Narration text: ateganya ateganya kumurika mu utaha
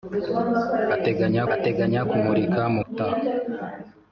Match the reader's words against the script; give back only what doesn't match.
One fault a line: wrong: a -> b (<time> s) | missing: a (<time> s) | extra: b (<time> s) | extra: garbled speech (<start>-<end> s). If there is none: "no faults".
no faults